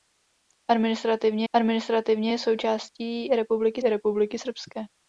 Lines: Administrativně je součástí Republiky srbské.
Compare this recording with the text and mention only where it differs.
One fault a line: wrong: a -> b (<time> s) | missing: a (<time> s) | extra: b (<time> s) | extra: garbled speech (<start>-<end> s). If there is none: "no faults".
extra: administrativně (1.5 s)
extra: Republiky (3.8 s)